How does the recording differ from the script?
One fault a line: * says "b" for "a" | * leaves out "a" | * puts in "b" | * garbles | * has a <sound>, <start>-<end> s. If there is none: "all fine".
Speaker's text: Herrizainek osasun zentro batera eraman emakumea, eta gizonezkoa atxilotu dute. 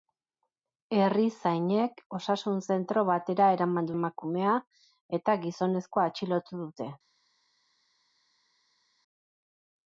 all fine